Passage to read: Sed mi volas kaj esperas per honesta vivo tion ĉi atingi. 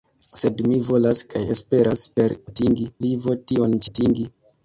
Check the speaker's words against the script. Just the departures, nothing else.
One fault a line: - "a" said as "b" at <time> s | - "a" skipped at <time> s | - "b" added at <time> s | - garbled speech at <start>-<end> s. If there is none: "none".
- "honesta" said as "atingi" at 2.5 s
- "ĉi" skipped at 3.8 s